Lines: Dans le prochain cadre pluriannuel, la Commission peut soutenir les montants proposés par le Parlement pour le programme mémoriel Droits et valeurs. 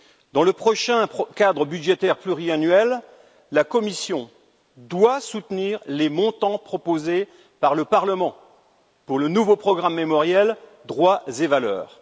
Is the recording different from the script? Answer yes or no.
yes